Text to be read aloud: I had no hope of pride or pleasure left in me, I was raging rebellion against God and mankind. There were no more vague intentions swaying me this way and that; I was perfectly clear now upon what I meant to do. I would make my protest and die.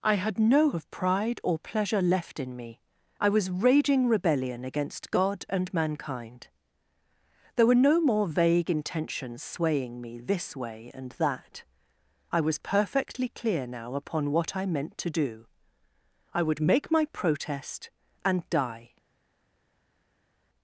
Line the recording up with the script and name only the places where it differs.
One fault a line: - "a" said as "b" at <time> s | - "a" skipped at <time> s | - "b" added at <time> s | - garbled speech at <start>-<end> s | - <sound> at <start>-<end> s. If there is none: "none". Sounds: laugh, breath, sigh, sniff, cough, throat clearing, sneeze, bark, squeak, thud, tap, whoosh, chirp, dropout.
- "hope" skipped at 0.7 s